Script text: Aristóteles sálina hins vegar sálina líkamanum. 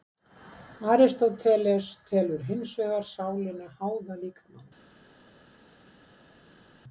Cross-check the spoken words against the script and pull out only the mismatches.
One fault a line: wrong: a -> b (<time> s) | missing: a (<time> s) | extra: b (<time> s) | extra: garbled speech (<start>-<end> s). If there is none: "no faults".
wrong: sálina -> telur (2.1 s)
extra: háða (3.8 s)